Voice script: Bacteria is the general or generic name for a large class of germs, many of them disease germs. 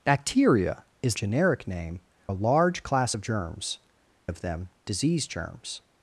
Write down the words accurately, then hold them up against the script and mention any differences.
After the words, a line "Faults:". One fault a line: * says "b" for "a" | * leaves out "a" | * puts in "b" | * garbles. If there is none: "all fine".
Bacteria is generic name a large class of germs, of them disease germs.
Faults:
* leaves out "the general or"
* leaves out "for"
* leaves out "many"